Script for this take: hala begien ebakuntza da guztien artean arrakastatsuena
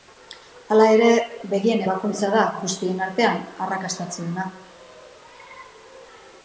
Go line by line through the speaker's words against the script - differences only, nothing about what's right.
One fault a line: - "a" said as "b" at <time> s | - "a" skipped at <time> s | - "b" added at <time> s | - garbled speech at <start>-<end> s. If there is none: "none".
- "ere" added at 0.9 s